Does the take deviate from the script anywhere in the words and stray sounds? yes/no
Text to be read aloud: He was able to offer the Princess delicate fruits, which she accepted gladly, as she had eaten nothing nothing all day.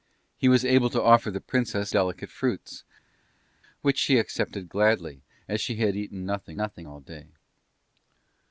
no